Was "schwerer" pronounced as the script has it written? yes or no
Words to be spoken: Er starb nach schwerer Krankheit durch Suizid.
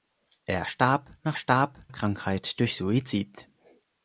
no